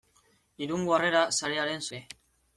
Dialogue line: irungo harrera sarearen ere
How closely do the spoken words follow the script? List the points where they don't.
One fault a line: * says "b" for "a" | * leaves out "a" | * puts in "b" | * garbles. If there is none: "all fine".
all fine